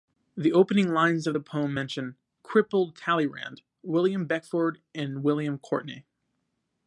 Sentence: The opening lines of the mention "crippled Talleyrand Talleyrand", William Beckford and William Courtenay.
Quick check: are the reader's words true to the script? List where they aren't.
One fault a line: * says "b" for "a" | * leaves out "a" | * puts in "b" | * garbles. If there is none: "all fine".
* puts in "poem"
* leaves out "Talleyrand"